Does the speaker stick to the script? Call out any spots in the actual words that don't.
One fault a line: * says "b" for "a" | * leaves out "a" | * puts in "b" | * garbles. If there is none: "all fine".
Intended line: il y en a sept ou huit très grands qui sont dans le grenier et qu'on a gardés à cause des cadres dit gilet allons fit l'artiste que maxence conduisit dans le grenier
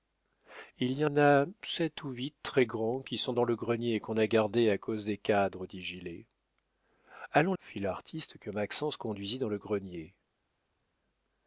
all fine